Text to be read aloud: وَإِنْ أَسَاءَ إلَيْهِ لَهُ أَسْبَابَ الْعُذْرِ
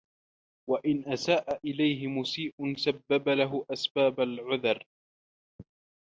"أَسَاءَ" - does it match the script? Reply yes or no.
yes